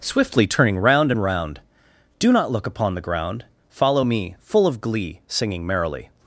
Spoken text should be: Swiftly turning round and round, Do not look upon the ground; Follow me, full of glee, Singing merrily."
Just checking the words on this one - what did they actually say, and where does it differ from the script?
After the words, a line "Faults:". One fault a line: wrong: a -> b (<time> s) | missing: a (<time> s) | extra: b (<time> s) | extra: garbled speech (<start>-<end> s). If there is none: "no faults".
Swiftly turning round and round, Do not look upon the ground; Follow me, full of glee, Singing merrily."
Faults:
no faults